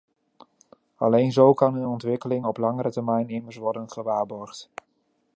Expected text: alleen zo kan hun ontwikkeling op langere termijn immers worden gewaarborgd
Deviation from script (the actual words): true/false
false